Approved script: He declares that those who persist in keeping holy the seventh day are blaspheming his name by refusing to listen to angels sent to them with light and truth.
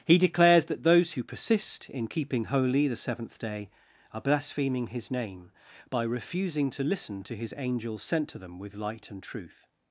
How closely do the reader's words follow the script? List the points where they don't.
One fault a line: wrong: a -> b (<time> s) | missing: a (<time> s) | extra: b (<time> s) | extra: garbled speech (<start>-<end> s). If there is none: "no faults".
extra: his (7.3 s)